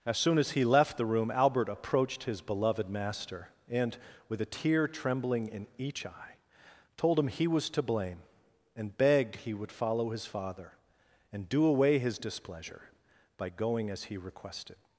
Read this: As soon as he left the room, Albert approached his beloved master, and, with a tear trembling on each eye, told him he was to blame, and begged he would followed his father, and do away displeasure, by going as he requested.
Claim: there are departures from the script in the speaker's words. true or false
true